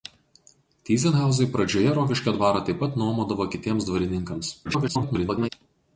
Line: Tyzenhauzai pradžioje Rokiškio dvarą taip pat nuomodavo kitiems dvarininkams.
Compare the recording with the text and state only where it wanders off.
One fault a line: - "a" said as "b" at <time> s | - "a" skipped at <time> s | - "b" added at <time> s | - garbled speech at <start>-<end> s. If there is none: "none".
- garbled speech at 4.6-5.5 s